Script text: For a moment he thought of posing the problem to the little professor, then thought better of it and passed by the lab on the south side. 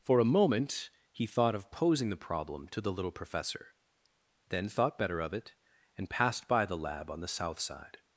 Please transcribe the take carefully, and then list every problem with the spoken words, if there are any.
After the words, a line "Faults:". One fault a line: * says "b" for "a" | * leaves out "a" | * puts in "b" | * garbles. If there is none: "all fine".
For a moment he thought of posing the problem to the little professor, then thought better of it and passed by the lab on the south side.
Faults:
all fine